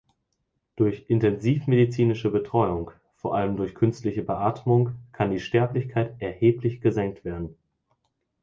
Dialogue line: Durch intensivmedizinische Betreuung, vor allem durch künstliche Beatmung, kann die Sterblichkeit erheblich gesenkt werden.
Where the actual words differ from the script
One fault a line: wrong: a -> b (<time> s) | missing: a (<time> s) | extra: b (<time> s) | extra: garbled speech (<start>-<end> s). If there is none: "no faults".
no faults